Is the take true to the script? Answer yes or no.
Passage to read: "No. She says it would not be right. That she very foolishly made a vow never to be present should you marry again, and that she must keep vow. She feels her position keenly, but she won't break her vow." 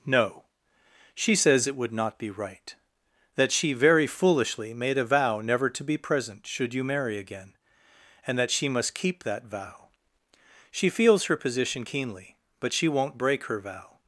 no